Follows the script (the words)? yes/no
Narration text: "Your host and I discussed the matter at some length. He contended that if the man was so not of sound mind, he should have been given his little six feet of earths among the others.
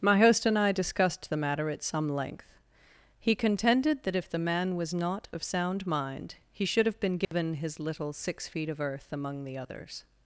no